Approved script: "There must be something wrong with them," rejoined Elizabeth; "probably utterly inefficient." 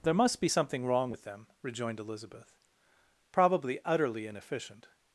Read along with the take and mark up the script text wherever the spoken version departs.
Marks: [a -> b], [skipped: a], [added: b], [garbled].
"There must be something wrong with them," rejoined Elizabeth; "probably utterly inefficient."